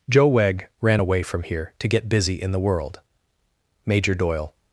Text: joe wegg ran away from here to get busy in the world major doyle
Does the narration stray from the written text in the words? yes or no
no